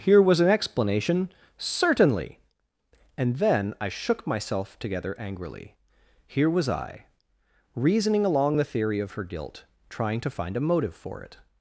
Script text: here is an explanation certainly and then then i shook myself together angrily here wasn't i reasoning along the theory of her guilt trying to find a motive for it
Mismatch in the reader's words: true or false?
true